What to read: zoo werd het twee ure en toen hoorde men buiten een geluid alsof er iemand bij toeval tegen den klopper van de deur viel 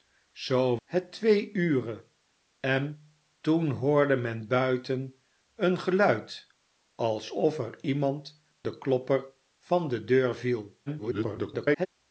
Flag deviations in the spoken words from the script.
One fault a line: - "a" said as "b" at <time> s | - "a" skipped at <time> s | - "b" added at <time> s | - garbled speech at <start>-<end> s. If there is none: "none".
- "werd" skipped at 0.8 s
- "bij toeval tegen" skipped at 8.4 s
- garbled speech at 10.9-11.9 s